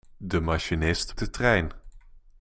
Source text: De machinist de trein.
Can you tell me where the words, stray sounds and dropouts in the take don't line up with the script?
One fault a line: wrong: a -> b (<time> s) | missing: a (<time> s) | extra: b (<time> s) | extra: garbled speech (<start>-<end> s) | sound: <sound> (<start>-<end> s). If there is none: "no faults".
no faults